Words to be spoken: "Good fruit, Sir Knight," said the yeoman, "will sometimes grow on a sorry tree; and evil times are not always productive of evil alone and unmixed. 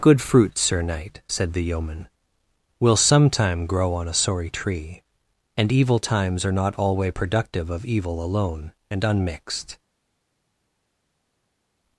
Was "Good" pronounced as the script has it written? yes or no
yes